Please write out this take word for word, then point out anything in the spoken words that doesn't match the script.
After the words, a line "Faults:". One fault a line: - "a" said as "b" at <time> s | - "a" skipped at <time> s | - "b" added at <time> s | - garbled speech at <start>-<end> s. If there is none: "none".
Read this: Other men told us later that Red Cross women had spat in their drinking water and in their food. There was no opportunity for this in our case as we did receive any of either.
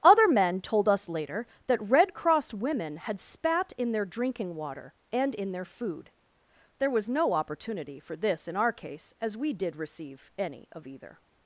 Other men told us later that Red Cross women had spat in their drinking water and in their food. There was no opportunity for this in our case as we did receive any of either.
Faults:
none